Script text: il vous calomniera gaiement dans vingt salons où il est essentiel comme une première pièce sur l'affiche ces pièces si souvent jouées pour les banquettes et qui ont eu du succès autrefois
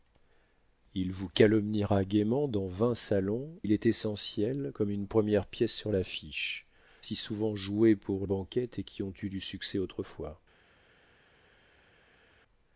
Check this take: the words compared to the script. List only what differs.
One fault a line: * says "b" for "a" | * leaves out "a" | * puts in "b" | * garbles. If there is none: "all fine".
* leaves out "où"
* leaves out "ces pièces"
* leaves out "les"